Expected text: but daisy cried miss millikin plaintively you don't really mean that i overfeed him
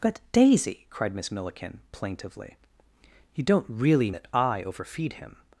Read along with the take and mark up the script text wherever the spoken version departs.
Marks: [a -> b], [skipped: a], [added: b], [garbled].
but daisy cried miss millikin plaintively you don't really [skipped: mean] that i overfeed him